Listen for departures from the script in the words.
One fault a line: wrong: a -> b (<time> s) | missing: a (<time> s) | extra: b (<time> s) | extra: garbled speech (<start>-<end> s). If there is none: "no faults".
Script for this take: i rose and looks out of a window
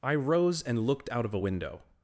wrong: looks -> looked (0.9 s)